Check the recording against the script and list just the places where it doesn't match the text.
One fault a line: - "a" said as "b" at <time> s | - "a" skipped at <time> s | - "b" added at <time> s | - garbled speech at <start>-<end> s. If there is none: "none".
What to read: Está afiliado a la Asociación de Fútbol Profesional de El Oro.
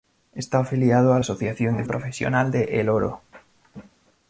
- "la" skipped at 1.2 s
- "Fútbol" skipped at 1.8 s